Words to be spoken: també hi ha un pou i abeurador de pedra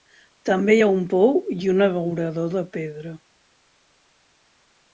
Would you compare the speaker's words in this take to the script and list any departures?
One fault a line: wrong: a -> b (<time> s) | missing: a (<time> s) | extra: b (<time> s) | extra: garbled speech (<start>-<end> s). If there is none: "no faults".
extra: un (1.7 s)